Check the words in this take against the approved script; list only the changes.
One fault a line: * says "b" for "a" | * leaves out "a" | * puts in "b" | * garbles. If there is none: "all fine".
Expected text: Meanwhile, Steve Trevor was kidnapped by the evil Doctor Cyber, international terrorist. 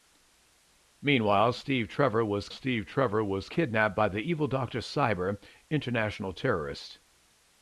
* puts in "Steve Trevor was"